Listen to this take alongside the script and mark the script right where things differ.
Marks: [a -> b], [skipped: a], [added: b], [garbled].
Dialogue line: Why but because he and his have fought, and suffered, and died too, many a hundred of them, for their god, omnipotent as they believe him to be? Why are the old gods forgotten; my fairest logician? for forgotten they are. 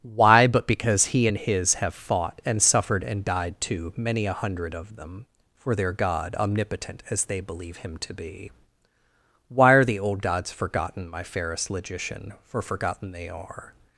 Why but because he and his have fought, and suffered, and died too, many a hundred of them, for their god, omnipotent as they believe him to be? Why are the old gods forgotten; my fairest logician? for forgotten they are.